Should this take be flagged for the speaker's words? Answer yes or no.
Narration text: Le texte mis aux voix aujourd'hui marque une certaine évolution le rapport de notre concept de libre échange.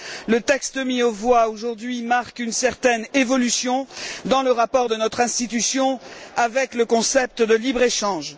yes